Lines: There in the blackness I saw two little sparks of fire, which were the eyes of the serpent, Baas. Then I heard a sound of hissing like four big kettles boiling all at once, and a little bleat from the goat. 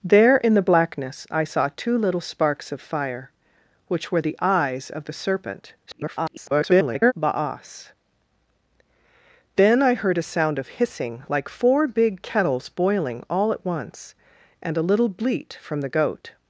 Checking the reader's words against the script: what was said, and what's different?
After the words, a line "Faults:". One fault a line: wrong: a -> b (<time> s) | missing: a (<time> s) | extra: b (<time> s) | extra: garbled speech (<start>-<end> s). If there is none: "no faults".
There in the blackness I saw two little sparks of fire, which were the eyes of the serpent, [garbled] Baas. Then I heard a sound of hissing like four big kettles boiling all at once, and a little bleat from the goat.
Faults:
extra: garbled speech (5.9-7.1 s)